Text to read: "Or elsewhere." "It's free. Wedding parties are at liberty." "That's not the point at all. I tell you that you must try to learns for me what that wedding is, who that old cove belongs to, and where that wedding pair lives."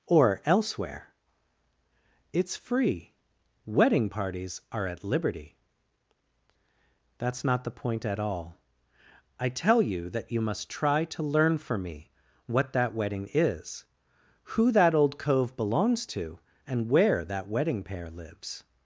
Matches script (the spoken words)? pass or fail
fail